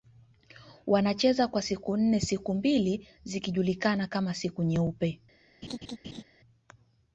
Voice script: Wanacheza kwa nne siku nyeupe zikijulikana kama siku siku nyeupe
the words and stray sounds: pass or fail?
fail